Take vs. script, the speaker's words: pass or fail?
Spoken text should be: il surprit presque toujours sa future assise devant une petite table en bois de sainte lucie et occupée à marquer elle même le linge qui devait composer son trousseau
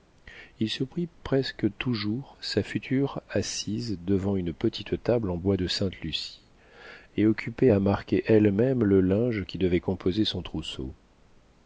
pass